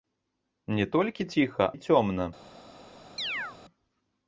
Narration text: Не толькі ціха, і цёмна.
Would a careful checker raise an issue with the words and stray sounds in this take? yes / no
yes